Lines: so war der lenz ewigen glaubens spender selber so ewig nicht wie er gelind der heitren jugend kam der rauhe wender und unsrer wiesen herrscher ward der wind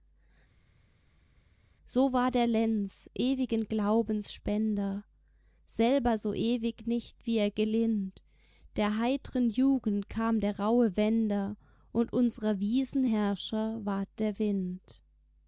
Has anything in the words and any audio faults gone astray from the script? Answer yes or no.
no